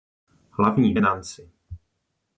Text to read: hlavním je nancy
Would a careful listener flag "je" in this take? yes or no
no